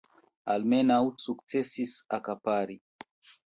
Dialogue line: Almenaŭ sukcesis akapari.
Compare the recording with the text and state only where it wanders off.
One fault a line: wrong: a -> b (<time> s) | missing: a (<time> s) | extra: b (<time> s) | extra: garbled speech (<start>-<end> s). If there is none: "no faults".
no faults